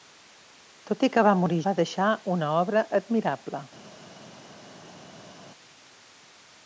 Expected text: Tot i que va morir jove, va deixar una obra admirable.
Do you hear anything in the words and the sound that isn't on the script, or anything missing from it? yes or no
yes